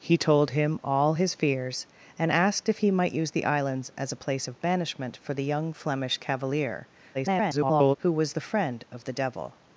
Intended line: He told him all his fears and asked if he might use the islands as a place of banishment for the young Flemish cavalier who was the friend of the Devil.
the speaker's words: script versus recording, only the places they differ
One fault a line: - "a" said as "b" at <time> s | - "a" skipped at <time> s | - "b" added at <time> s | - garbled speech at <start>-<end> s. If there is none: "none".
- garbled speech at 7.1-8.0 s